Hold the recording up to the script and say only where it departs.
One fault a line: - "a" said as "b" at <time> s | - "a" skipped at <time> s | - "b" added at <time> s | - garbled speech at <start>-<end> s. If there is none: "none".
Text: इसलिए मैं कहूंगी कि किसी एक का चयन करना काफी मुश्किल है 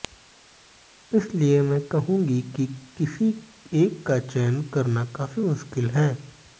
none